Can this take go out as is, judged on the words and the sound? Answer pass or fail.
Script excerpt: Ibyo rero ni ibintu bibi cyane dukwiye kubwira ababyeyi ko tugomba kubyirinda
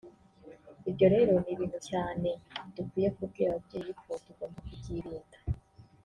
fail